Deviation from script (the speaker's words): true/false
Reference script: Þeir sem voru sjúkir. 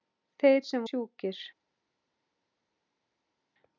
true